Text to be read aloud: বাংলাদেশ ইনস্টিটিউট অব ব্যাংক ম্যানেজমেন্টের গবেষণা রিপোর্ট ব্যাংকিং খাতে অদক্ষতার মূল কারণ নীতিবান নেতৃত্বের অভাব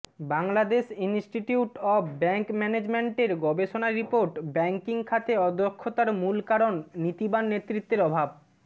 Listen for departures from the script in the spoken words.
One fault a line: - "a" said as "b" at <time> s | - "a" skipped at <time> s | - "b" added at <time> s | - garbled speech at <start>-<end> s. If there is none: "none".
none